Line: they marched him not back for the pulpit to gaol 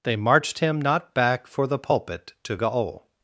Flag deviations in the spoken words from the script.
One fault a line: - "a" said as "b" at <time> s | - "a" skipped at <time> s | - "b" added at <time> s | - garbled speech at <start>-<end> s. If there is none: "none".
none